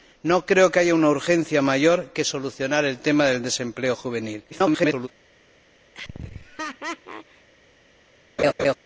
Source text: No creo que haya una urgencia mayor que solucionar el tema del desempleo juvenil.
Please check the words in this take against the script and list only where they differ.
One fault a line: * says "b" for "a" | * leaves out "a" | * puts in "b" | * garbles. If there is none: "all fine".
* garbles